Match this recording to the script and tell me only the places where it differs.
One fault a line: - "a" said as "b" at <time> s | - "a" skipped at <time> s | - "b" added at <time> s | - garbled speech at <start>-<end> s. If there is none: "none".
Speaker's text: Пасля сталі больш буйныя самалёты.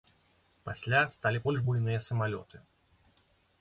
none